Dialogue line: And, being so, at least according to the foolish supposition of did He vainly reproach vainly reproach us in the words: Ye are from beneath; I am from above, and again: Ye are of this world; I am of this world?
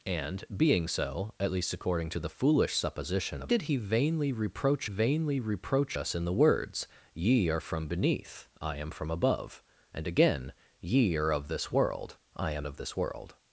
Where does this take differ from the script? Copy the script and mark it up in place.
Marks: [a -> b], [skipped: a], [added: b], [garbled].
And, being so, at least according to the foolish supposition of did He vainly reproach vainly reproach us in the words: Ye are from beneath; I am from above, and again: Ye are of this world; I am of this world?